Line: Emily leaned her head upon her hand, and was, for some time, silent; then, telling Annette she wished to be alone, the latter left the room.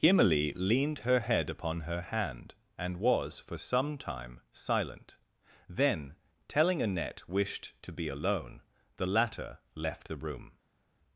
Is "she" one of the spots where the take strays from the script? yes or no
yes